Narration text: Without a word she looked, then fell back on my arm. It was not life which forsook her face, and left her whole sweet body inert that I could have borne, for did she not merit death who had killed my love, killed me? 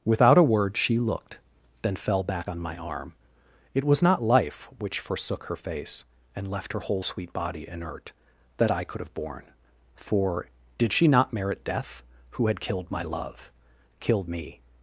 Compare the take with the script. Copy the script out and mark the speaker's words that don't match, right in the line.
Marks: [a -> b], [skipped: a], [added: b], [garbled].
Without a word she looked, then fell back on my arm. It was not life which forsook her face, and left her whole sweet body inert that I could have borne, for did she not merit death who had killed my love, killed me?